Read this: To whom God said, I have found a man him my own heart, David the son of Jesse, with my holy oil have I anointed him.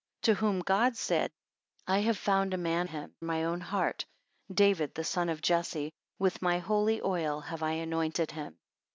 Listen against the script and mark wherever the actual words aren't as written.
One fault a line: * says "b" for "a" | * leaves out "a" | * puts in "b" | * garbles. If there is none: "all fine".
all fine